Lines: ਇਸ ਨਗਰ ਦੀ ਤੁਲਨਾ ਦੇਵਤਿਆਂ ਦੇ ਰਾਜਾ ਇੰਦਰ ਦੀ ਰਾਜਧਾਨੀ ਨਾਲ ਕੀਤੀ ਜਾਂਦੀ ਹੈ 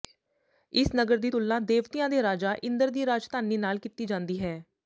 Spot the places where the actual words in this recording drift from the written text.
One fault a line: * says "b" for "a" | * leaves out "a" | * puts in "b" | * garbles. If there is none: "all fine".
all fine